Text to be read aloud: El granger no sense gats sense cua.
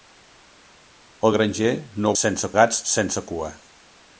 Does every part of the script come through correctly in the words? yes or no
yes